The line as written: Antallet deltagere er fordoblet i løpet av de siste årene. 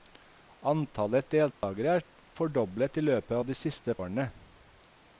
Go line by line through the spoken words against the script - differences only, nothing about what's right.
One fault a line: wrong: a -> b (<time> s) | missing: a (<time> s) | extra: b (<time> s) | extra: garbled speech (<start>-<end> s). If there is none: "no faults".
no faults